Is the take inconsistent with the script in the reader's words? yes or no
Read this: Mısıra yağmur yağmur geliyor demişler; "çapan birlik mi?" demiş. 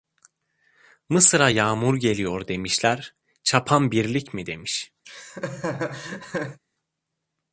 yes